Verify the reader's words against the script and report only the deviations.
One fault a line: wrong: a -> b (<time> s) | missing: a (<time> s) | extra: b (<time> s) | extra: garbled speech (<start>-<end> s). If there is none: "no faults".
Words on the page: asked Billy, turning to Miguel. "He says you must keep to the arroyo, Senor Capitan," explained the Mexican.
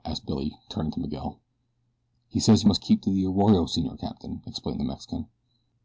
no faults